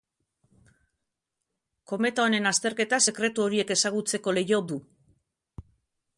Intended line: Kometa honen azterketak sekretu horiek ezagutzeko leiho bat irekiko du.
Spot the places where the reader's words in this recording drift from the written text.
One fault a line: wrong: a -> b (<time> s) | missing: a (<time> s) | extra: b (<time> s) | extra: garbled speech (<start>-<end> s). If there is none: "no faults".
missing: bat irekiko (4.6 s)